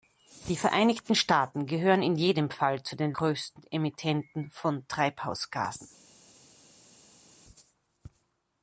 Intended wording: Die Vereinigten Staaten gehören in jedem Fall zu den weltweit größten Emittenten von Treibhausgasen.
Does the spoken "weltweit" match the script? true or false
false